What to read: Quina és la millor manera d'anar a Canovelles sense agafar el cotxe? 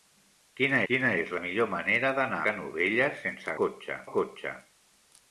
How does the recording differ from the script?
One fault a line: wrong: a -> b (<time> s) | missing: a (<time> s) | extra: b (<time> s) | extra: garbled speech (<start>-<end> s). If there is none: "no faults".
extra: quina (0.9 s)
missing: a (2.4 s)
wrong: agafar -> cotxe (3.6 s)